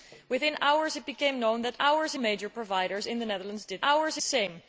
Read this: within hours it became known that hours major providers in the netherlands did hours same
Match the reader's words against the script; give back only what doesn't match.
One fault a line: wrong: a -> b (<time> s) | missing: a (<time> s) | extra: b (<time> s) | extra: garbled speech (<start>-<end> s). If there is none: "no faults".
no faults